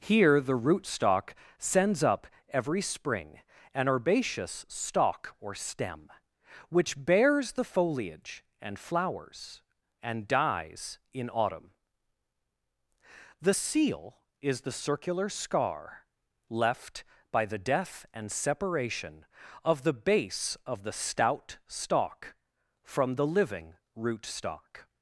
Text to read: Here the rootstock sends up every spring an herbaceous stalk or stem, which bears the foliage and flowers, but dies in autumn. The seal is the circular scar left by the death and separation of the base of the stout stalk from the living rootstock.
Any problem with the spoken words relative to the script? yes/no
yes